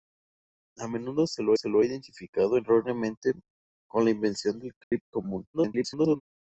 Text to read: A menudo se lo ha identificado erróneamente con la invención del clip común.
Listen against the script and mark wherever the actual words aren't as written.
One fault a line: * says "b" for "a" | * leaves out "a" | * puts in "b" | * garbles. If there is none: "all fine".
* puts in "se lo"
* garbles